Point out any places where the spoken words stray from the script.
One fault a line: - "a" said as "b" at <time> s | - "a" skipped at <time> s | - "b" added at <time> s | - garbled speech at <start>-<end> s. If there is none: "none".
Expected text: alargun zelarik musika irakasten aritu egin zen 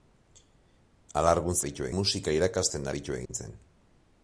- "zelarik" said as "aritu" at 1.6 s